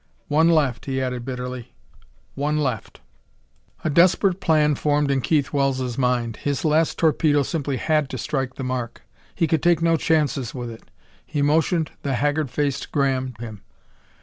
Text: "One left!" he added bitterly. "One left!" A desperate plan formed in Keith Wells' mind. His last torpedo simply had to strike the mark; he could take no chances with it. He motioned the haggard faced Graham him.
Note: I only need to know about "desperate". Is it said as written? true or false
true